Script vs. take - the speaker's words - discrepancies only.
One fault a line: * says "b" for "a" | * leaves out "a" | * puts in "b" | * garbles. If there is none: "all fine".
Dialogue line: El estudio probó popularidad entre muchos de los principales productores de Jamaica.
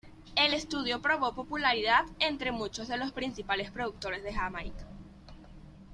all fine